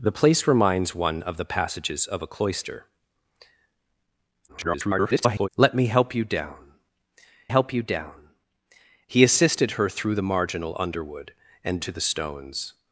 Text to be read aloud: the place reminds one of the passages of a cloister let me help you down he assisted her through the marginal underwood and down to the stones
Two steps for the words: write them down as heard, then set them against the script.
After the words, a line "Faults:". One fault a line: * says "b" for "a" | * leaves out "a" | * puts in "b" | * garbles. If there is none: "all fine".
the place reminds one of the passages of a cloister [garbled] let me help you down help you down he assisted her through the marginal underwood and to the stones
Faults:
* garbles
* puts in "help you down"
* leaves out "down"